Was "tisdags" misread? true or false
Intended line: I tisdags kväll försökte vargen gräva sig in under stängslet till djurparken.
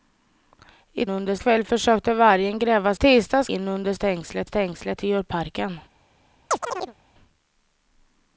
true